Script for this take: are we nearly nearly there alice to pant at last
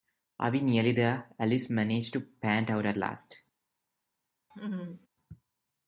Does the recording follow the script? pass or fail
fail